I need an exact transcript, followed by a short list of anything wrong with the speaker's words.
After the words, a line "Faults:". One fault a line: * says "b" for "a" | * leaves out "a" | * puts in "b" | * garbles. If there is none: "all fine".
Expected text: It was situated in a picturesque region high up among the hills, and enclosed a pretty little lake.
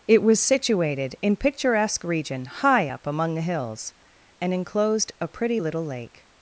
It was situated in picturesque region high up among the hills, and enclosed a pretty little lake.
Faults:
* leaves out "a"